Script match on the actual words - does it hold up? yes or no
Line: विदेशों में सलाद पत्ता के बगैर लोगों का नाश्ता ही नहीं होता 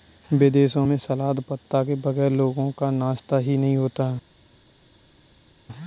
yes